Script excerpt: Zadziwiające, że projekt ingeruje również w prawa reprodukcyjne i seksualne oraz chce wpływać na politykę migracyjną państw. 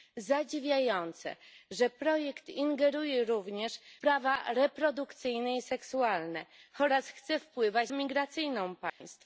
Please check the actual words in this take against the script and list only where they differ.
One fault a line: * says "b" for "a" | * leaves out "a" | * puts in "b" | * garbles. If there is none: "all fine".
* leaves out "w"
* leaves out "na politykę"